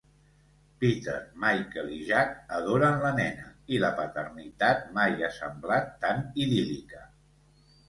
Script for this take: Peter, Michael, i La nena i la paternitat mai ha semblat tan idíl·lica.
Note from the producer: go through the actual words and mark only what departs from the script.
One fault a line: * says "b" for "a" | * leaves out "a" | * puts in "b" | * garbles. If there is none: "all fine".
* puts in "Jack adoren"